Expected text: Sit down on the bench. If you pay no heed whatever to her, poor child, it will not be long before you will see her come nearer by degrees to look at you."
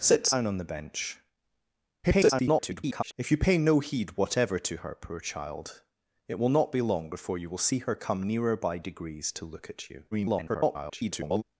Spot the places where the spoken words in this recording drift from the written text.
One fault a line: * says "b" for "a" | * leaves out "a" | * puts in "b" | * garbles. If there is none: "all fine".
* garbles
* garbles